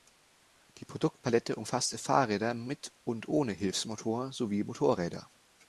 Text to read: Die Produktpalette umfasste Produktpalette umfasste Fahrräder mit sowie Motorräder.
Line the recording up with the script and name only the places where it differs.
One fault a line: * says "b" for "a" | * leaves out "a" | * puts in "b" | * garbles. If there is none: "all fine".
* says "Fahrräder mit und ohne Hilfsmotor" for "Produktpalette umfasste Fahrräder mit"